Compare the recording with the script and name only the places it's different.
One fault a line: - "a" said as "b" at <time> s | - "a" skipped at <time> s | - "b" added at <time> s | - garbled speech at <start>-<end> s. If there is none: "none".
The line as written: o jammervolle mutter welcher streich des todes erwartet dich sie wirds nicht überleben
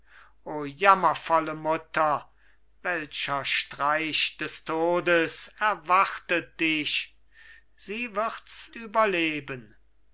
- "nicht" skipped at 8.7 s